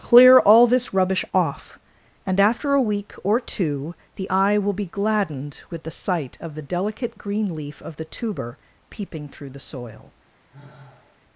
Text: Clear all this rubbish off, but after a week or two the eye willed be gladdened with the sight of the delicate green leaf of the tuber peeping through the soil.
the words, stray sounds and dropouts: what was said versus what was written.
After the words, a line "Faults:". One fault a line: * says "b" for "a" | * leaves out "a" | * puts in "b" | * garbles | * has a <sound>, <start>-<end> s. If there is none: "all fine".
Clear all this rubbish off, and after a week or two the eye will be gladdened with the sight of the delicate green leaf of the tuber peeping through the soil.
Faults:
* says "and" for "but"
* says "will" for "willed"
* has a sigh, 10.5-11.2 s